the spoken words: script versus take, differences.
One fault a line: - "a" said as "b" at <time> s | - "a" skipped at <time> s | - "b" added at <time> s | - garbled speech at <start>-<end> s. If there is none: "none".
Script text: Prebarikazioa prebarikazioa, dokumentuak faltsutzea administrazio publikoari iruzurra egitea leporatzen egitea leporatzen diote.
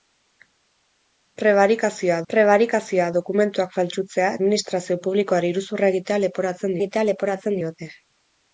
none